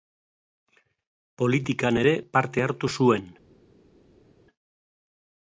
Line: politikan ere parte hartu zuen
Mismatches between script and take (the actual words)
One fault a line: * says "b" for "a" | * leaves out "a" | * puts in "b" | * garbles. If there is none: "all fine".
all fine